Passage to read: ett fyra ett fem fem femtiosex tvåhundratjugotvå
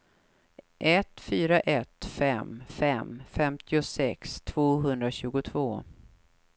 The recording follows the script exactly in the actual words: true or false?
true